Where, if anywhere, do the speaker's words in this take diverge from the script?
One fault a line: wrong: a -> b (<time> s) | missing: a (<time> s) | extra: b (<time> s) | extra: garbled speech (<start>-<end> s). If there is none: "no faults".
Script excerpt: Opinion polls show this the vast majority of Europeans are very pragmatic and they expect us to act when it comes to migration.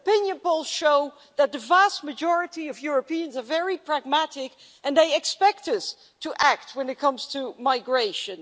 wrong: this -> that (1.4 s)